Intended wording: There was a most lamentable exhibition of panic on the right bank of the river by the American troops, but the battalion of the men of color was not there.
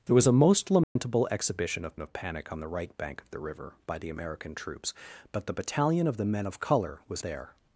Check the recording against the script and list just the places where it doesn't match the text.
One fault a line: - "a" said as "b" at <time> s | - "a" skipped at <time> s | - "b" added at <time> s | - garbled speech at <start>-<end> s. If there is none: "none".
- "of" added at 2.0 s
- "not" skipped at 7.2 s